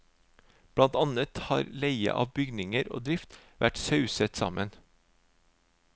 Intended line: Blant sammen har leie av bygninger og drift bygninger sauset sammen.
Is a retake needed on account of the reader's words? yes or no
yes